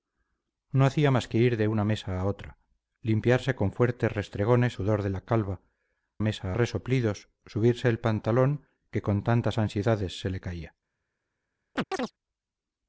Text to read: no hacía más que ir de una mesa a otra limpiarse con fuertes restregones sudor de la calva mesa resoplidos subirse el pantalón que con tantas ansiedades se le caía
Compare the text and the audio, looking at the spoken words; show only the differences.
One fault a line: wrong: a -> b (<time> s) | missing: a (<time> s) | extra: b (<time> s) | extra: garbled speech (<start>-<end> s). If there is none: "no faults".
no faults